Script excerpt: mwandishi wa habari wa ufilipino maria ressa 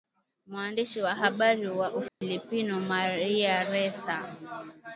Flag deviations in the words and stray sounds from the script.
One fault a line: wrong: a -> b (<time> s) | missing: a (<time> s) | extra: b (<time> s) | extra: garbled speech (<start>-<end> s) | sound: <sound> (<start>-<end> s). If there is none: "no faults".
sound: dropout (2.1-2.2 s)